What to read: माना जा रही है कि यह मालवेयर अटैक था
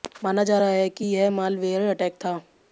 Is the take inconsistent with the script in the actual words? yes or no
yes